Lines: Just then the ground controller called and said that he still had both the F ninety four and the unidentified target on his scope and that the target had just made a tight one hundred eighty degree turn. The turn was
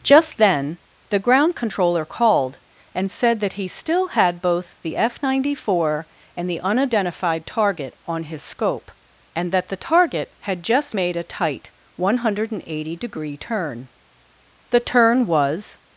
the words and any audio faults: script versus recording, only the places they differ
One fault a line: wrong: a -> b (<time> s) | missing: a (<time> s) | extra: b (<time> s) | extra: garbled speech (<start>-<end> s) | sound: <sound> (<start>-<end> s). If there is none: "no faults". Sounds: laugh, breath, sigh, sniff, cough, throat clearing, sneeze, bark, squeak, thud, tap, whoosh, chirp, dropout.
no faults